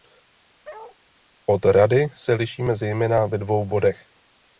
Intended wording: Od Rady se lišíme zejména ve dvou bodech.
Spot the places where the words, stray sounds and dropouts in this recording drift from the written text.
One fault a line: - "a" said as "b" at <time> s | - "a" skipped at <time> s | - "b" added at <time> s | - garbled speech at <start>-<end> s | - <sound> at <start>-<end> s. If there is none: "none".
- bark at 0.6-1.0 s